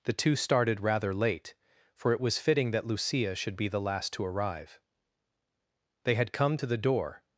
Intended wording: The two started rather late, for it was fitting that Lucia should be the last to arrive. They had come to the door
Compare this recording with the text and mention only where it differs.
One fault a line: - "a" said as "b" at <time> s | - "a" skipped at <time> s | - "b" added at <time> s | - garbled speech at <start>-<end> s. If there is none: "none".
none